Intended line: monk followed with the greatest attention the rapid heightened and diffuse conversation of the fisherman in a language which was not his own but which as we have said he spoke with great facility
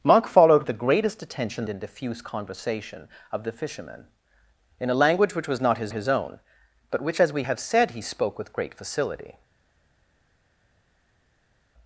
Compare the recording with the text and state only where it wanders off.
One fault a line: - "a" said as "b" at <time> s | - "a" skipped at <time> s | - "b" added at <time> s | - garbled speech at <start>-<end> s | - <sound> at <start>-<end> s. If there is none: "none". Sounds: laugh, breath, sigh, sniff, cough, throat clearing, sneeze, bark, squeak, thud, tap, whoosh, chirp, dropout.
- "with" skipped at 0.6 s
- "the rapid heightened" skipped at 1.6 s
- "his" added at 5.9 s